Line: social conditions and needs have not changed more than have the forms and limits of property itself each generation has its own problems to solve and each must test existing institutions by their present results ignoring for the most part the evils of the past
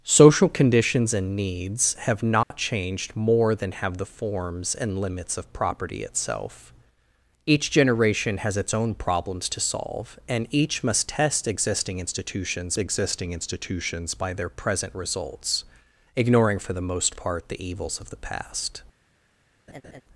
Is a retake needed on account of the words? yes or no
yes